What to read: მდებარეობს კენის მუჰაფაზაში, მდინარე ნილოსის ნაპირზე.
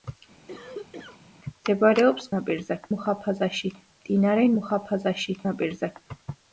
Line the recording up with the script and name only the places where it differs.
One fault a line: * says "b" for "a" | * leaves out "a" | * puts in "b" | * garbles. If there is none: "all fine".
* says "ნაპირზე" for "კენის"
* says "მუჰაფაზაში" for "ნილოსის"